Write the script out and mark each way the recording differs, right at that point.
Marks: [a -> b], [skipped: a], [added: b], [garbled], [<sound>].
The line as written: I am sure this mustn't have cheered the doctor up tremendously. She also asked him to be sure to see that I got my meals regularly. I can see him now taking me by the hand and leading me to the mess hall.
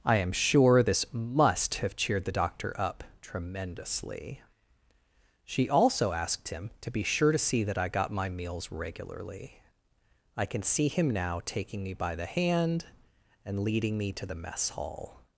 I am sure this [mustn't -> must] have cheered the doctor up tremendously. She also asked him to be sure to see that I got my meals regularly. I can see him now taking me by the hand and leading me to the mess hall.